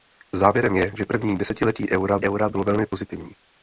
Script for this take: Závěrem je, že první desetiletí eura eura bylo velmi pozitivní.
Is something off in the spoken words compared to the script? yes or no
no